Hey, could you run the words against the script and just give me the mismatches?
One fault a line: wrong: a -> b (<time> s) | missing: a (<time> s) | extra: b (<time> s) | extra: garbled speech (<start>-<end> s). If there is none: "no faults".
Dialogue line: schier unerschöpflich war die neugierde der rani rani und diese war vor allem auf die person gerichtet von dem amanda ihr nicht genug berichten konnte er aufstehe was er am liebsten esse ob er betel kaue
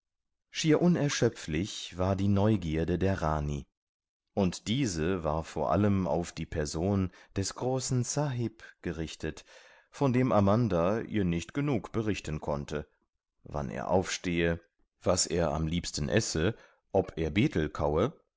missing: rani (3.7 s)
extra: des großen sahib (7.3 s)
extra: wann (13.4 s)